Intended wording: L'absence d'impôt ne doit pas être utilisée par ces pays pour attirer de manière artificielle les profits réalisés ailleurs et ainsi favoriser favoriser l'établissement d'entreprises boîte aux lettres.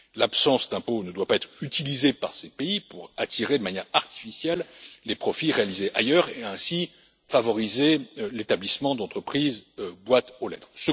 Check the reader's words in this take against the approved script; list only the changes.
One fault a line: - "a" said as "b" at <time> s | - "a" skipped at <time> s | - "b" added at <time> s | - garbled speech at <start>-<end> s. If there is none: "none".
- "favoriser" skipped at 8.0 s